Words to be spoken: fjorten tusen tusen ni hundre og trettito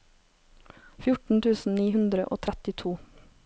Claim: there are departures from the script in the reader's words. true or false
true